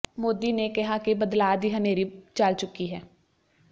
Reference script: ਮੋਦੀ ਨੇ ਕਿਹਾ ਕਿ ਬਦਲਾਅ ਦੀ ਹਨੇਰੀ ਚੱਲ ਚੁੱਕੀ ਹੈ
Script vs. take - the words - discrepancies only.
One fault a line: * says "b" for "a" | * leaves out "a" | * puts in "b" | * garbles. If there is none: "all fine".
all fine